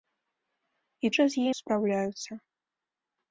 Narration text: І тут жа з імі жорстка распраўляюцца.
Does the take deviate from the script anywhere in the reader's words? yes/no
yes